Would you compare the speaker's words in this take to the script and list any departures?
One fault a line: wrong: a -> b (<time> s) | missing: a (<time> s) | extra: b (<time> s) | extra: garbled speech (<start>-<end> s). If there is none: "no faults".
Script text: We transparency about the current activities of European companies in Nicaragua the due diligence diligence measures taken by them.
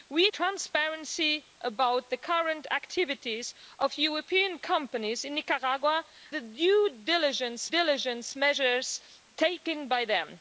no faults